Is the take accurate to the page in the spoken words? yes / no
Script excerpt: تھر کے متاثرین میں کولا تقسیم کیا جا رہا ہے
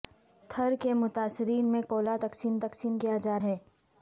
no